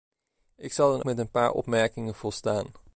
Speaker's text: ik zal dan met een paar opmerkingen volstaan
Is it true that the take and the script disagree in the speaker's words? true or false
false